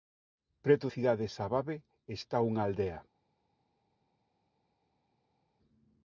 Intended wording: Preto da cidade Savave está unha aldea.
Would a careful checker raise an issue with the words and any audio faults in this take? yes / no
yes